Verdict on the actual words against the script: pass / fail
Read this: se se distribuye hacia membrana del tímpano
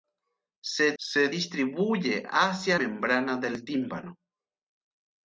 pass